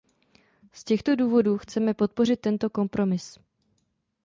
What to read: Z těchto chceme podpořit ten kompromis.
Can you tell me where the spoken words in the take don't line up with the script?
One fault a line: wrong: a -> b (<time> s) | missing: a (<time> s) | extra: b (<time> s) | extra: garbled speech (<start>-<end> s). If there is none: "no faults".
extra: důvodů (1.1 s)
wrong: ten -> tento (2.4 s)